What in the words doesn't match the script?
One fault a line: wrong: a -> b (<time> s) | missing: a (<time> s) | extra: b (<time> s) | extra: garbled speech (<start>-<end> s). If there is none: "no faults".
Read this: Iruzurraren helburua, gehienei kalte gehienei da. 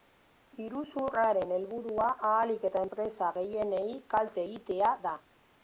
extra: ahalik eta enpresa (2.3 s)
wrong: gehienei -> egitea (4.5 s)